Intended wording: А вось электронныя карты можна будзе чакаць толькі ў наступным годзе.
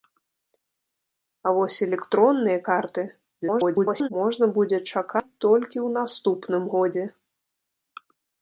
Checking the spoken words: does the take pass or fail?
fail